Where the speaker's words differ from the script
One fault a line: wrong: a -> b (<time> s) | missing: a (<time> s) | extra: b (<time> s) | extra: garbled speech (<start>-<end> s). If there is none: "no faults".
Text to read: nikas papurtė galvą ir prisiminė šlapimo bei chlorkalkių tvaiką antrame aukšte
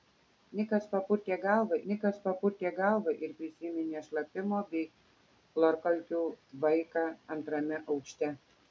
extra: nikas papurtė galvą (1.9 s)